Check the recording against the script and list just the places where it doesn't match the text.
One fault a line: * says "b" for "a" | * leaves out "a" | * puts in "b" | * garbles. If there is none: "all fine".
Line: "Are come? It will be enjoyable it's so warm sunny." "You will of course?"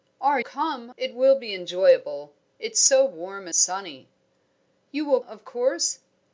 all fine